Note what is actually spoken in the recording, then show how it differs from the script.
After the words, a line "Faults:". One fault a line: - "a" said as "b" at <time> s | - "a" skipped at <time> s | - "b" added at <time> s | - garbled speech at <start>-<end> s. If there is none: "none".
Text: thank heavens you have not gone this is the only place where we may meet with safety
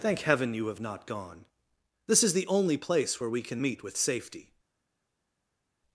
thank heaven you have not gone this is the only place where we can meet with safety
Faults:
- "heavens" said as "heaven" at 0.2 s
- "may" said as "can" at 3.4 s